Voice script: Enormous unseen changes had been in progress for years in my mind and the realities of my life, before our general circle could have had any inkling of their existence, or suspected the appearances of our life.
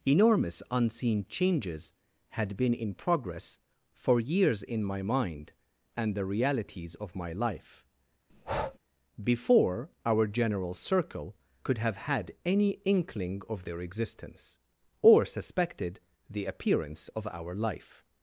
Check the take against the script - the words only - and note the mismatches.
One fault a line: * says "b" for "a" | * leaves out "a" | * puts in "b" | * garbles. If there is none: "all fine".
* says "appearance" for "appearances"